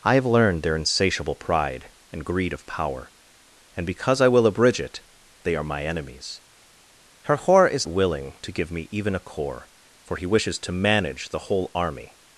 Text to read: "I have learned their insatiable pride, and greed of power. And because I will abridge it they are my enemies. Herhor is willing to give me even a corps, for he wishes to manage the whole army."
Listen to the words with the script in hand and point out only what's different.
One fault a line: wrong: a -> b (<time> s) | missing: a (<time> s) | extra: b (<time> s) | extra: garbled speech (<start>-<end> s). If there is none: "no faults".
no faults